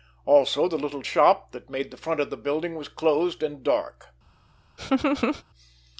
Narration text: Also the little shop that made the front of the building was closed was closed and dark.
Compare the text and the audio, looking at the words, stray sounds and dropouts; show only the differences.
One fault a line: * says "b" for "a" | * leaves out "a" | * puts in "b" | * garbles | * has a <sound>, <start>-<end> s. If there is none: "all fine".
* leaves out "was closed"
* has a laugh, 4.8-5.4 s